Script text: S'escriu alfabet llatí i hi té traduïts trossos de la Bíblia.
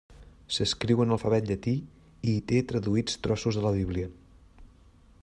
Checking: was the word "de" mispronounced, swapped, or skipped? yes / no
no